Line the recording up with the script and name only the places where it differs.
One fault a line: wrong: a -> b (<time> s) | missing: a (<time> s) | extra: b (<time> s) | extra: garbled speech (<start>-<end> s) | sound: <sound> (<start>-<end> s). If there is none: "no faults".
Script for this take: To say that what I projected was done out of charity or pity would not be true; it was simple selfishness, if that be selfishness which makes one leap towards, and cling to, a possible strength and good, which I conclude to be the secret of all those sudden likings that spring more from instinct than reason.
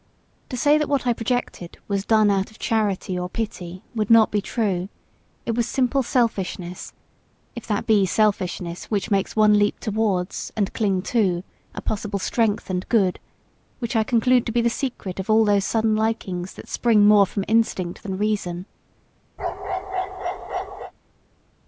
sound: bark (19.4-20.9 s)